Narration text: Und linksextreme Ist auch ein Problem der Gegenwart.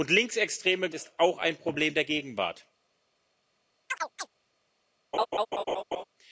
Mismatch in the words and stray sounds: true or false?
true